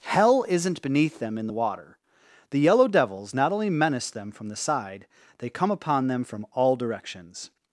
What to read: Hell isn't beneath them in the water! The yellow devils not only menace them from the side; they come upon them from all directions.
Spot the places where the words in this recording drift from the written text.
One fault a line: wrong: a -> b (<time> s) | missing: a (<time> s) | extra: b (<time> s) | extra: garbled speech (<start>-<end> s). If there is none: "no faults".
no faults